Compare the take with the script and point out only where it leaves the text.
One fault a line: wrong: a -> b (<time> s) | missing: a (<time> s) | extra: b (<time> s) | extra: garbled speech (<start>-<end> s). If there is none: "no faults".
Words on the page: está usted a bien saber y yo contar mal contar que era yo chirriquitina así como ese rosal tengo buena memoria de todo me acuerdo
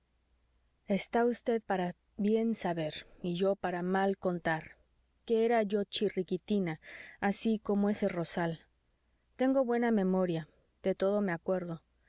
wrong: a -> para (1.6 s)
wrong: contar -> para (3.6 s)